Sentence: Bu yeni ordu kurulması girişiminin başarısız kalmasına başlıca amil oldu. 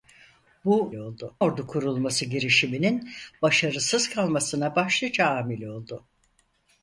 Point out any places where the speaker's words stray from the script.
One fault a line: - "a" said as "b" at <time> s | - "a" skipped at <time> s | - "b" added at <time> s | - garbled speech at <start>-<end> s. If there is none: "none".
- "yeni" said as "oldu" at 0.9 s